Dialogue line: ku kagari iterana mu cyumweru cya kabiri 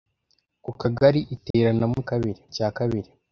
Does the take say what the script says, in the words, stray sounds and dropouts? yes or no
no